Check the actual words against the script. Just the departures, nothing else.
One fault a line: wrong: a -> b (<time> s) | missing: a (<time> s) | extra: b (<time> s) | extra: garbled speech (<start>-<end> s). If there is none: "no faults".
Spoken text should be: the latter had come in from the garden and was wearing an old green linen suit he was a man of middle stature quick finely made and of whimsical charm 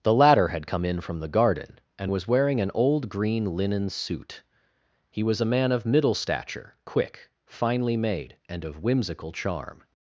no faults